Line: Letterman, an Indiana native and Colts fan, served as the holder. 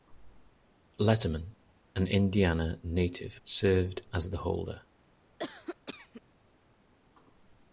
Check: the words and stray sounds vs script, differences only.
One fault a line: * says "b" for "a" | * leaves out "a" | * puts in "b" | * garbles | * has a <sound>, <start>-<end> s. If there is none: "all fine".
* leaves out "and Colts fan"
* has a cough, 5.4-6.2 s